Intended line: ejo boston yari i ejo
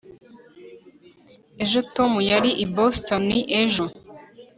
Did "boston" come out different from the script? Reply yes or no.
yes